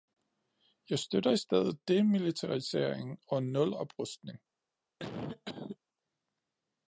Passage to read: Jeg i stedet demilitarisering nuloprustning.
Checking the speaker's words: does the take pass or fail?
fail